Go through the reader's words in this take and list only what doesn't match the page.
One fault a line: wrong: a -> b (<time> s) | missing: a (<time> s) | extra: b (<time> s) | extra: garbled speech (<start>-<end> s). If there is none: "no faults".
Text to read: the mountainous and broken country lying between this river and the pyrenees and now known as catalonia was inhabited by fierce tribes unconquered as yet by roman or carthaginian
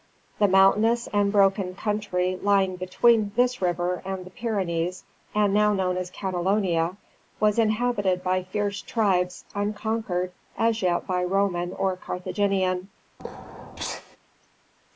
no faults